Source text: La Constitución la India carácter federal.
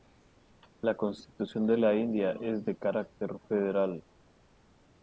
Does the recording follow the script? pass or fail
fail